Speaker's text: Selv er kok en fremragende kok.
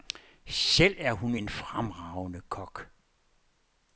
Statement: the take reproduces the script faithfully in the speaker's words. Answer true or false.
false